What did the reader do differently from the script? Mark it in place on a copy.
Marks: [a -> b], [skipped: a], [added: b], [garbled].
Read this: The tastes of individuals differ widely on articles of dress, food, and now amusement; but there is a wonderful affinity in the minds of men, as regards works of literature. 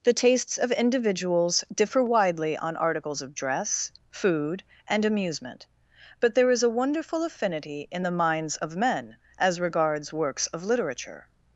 The tastes of individuals differ widely on articles of dress, food, and [skipped: now] amusement; but there is a wonderful affinity in the minds of men, as regards works of literature.